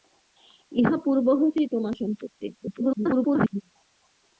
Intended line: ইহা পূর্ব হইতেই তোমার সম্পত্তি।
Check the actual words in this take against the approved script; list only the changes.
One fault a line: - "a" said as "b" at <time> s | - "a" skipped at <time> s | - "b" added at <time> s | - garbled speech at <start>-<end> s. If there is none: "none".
- garbled speech at 2.5-3.6 s